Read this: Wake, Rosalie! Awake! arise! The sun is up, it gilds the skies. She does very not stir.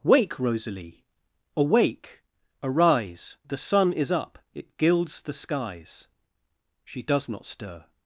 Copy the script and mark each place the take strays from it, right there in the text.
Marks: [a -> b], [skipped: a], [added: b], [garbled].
Wake, Rosalie! Awake! arise! The sun is up, it gilds the skies. She does [skipped: very] not stir.